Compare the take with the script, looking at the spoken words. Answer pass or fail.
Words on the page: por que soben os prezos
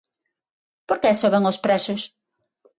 pass